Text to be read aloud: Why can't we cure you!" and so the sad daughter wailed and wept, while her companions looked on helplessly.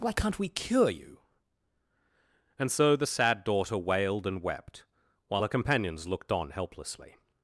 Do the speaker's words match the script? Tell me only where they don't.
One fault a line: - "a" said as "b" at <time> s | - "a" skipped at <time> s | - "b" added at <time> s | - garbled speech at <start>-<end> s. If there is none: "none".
none